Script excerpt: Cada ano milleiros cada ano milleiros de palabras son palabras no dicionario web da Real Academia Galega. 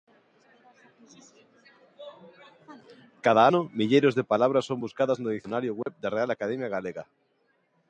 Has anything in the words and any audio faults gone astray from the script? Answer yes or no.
yes